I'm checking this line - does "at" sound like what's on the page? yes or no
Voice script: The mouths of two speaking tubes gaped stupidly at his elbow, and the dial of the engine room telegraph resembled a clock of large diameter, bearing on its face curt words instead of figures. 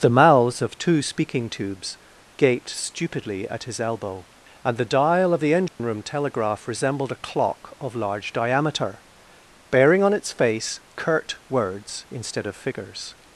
yes